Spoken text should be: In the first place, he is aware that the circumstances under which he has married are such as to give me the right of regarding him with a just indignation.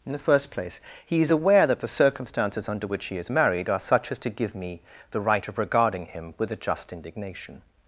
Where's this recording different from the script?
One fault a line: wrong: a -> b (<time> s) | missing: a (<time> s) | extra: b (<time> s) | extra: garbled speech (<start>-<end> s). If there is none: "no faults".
wrong: has -> is (3.2 s)